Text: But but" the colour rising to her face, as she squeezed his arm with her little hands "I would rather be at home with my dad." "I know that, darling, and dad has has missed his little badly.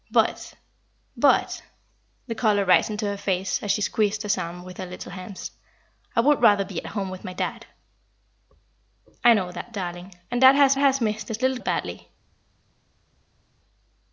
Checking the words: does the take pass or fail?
pass